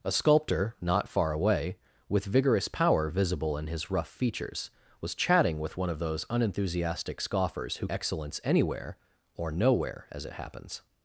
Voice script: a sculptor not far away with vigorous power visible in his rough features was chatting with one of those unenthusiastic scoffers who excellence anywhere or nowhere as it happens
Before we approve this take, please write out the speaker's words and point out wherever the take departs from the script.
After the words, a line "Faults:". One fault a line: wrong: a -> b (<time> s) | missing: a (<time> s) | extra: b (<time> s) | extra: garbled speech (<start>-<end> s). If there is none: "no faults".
a sculptor not far away with vigorous power visible in his rough features was chatting with one of those unenthusiastic scoffers who excellence anywhere or nowhere as it happens
Faults:
no faults